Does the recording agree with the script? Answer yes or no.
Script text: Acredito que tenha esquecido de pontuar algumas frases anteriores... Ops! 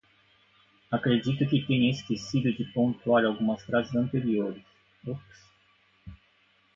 yes